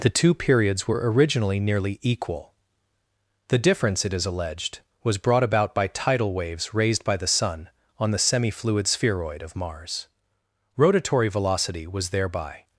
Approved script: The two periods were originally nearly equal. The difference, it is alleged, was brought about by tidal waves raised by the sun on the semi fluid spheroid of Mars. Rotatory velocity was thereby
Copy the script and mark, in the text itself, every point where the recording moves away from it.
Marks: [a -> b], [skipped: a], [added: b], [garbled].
The two periods were originally nearly equal. The difference, it is alleged, was brought about by tidal waves raised by the sun on the semi fluid spheroid of Mars. Rotatory velocity was thereby